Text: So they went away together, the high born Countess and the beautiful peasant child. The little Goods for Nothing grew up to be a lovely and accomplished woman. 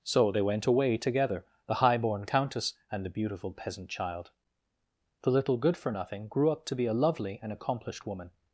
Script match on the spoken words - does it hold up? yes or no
no